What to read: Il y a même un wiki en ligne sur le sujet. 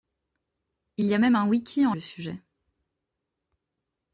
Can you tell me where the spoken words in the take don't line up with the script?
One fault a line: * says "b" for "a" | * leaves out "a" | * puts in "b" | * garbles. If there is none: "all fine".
* leaves out "ligne sur"